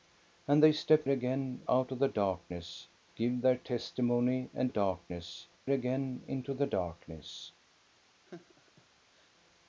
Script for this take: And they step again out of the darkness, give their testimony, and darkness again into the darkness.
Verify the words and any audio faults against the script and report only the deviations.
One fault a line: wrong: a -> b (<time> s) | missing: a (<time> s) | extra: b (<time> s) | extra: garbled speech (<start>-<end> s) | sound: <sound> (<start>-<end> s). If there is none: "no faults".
sound: laugh (8.2-9.3 s)